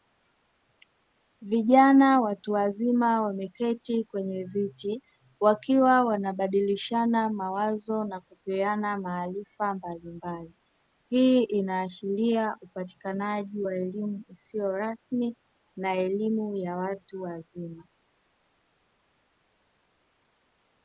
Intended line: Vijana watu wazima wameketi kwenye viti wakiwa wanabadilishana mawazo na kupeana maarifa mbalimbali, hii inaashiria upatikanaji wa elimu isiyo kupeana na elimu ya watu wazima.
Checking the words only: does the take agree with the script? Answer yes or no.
no